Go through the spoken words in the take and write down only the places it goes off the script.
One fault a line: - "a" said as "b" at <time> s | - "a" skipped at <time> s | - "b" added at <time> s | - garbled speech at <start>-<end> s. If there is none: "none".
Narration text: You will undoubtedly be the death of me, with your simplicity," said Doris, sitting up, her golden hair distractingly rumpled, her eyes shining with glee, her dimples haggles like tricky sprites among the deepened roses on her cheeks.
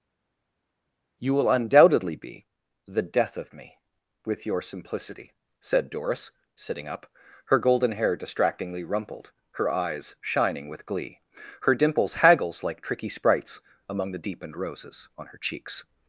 none